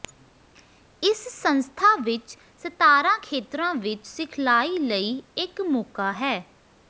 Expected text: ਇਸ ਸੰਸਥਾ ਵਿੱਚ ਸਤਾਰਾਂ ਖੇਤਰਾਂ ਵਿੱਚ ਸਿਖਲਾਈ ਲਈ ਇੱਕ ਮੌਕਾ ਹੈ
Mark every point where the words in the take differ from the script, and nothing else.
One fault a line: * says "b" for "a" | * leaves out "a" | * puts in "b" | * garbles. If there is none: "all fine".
all fine